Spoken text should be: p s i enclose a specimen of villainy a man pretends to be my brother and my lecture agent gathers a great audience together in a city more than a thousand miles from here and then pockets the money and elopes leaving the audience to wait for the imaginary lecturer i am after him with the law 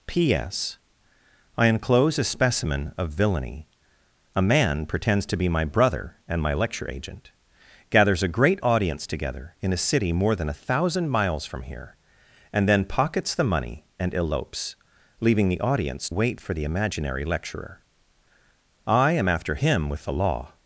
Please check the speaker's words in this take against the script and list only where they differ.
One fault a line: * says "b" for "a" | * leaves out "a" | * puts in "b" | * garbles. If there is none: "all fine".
* leaves out "to"